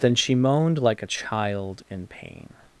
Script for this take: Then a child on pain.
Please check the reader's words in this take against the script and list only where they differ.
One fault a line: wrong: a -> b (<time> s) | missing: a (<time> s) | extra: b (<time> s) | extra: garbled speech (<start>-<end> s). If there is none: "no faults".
extra: she moaned like (0.1 s)
wrong: on -> in (1.9 s)